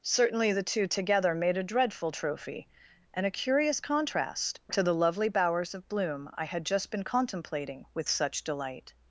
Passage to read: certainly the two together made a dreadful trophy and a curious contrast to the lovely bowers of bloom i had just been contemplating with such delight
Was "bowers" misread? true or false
false